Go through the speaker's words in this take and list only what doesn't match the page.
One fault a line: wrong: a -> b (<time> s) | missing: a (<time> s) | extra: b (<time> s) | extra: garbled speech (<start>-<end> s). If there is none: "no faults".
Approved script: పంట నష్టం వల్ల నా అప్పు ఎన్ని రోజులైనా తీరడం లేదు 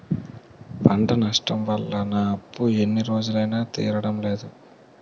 no faults